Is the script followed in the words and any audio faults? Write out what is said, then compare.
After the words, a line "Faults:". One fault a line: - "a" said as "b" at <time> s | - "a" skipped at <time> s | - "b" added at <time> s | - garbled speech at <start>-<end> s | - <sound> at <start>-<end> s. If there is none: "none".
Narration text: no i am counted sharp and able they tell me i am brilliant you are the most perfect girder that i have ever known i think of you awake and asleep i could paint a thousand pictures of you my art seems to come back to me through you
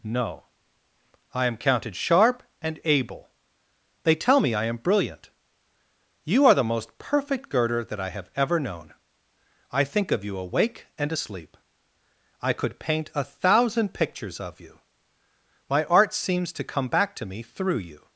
no i am counted sharp and able they tell me i am brilliant you are the most perfect girder that i have ever known i think of you awake and asleep i could paint a thousand pictures of you my art seems to come back to me through you
Faults:
none